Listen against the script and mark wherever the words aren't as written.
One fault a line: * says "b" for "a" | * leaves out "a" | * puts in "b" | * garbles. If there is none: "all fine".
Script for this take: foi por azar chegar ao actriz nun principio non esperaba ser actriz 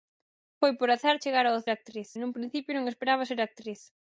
all fine